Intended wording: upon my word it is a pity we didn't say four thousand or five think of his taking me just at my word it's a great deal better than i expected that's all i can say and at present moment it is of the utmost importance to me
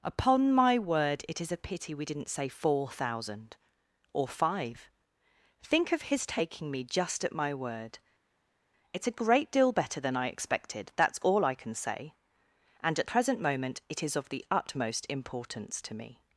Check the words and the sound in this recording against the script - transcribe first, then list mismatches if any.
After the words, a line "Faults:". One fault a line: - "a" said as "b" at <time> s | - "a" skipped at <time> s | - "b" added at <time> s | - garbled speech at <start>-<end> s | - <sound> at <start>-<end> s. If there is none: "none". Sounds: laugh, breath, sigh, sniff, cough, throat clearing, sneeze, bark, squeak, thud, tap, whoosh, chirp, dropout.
upon my word it is a pity we didn't say four thousand or five think of his taking me just at my word it's a great deal better than i expected that's all i can say and at present moment it is of the utmost importance to me
Faults:
none